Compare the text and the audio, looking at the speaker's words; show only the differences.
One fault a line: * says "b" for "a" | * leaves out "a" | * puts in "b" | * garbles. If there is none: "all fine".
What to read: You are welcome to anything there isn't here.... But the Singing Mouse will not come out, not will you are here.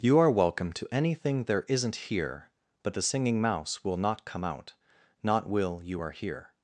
all fine